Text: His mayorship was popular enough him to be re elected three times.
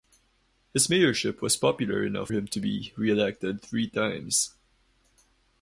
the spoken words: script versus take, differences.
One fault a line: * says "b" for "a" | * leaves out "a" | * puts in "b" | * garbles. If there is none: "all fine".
all fine